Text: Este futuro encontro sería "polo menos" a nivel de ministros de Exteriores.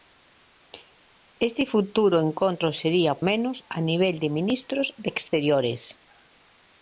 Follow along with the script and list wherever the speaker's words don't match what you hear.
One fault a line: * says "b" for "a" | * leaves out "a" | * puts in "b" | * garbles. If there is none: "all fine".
* leaves out "polo"